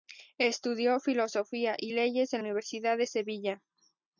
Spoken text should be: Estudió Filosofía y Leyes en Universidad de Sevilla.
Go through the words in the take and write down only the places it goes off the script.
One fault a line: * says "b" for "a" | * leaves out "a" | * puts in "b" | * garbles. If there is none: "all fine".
all fine